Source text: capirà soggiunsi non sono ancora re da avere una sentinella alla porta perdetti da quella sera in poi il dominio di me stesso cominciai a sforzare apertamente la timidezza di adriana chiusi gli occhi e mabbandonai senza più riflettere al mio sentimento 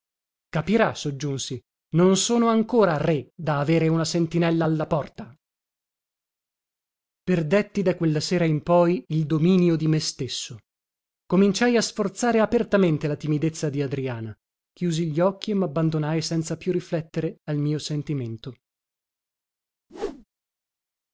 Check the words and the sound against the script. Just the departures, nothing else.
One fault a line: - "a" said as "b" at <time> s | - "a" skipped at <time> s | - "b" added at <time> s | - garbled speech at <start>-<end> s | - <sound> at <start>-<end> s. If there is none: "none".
- whoosh at 19.9-20.2 s